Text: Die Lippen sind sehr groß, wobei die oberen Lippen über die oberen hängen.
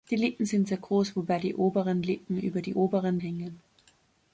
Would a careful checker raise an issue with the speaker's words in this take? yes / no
no